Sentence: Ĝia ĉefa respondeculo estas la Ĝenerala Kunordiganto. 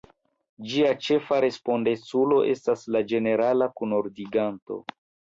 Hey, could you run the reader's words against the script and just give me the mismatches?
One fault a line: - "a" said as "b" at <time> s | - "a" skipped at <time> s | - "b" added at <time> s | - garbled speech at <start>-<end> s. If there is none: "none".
none